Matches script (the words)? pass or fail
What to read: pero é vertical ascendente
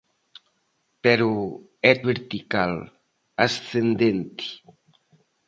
pass